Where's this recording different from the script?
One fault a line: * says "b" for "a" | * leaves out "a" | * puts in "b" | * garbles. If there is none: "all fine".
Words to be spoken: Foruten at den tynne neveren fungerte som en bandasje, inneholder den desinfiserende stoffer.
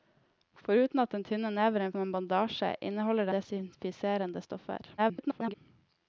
* leaves out "fungerte"
* leaves out "den"
* garbles